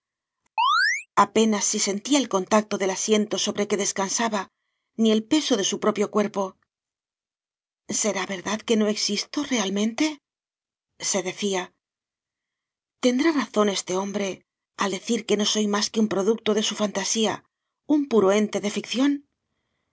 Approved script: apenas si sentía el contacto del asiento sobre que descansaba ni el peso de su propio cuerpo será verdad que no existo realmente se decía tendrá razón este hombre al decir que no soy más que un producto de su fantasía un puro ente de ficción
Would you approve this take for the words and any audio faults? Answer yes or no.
no